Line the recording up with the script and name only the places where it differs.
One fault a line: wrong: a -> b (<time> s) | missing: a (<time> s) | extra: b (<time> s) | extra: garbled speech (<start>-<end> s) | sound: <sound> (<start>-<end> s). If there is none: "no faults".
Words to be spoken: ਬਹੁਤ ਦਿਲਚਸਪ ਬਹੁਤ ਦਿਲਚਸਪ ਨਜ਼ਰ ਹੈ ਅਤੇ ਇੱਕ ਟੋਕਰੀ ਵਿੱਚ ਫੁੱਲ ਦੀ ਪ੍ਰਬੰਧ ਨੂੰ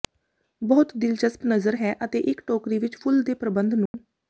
missing: ਬਹੁਤ ਦਿਲਚਸਪ (1.4 s)
wrong: ਦੀ -> ਦੇ (3.2 s)
sound: dropout (3.9-3.9 s)